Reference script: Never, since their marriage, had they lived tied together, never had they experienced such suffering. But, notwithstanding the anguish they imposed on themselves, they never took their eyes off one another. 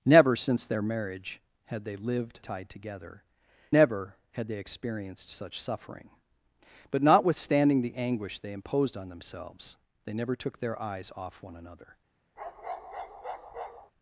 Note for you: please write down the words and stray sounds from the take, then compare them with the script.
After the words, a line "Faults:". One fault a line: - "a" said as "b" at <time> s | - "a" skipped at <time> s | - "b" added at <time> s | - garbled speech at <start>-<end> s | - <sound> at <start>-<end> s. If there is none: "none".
Never, since their marriage, had they lived tied together, never had they experienced such suffering. But, notwithstanding the anguish they imposed on themselves, they never took their eyes off one another.
Faults:
- bark at 12.4-13.9 s